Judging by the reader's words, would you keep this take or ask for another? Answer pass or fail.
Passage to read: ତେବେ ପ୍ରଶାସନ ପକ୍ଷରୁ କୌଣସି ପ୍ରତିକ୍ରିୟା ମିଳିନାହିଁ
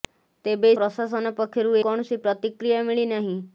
pass